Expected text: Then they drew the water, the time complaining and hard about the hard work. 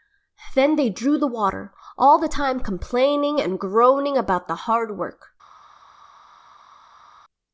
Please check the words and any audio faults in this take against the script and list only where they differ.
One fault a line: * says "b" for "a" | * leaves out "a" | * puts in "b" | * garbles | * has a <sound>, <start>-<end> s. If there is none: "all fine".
* puts in "all"
* says "groaning" for "hard"